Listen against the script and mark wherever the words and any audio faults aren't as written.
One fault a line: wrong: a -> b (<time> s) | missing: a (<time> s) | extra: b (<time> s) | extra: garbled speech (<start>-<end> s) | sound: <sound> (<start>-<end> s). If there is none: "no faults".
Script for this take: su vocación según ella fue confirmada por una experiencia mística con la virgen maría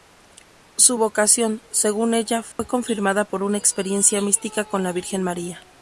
sound: dropout (2.5-2.6 s)